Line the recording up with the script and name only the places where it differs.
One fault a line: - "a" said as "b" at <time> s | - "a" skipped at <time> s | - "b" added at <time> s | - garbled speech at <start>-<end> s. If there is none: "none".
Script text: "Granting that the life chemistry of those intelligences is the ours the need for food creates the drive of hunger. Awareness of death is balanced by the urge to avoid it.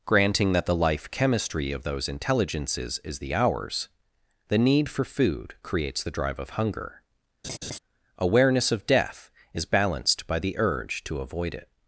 none